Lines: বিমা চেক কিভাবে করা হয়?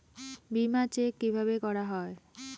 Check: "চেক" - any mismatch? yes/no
no